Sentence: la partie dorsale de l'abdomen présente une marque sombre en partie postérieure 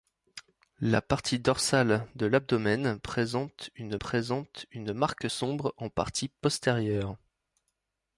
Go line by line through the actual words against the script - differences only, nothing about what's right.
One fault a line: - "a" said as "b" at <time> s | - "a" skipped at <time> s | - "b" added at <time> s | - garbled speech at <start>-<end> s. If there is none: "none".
- "présente une" added at 4.0 s